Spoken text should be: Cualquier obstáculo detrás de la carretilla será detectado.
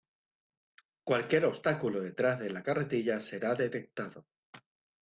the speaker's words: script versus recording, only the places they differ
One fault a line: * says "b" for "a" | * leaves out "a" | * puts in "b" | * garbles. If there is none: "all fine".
all fine